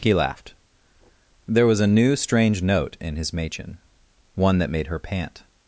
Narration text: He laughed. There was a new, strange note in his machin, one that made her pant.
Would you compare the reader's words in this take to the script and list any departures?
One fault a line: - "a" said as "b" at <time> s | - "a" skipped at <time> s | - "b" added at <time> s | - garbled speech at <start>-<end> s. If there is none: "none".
none